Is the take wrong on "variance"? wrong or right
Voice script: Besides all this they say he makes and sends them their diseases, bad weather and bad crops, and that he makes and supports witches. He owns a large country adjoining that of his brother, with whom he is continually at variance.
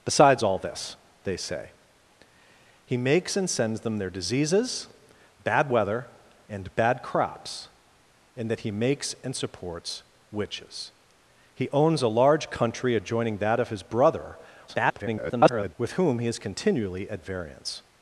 right